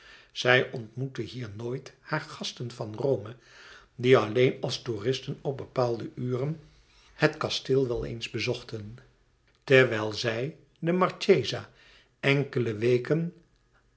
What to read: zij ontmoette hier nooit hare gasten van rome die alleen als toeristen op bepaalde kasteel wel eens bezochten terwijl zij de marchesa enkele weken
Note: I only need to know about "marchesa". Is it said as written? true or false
true